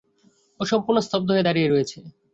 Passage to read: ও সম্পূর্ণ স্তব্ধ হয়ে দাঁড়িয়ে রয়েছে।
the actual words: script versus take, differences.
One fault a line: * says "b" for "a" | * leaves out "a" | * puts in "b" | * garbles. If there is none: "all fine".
all fine